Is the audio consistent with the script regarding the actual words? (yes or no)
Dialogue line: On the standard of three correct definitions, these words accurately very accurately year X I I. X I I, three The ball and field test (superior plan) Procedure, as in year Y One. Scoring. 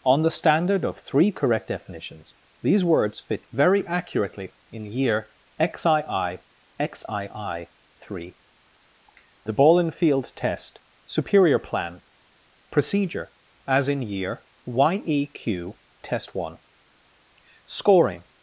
no